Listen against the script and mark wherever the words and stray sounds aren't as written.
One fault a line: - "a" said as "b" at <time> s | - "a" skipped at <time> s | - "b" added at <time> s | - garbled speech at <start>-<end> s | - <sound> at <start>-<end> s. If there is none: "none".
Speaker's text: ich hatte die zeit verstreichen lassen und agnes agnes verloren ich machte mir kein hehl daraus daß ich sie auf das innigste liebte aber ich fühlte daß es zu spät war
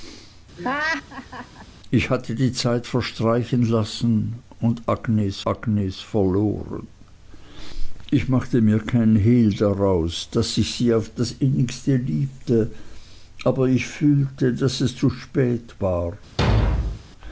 - laugh at 0.6-1.7 s
- thud at 16.4-17.0 s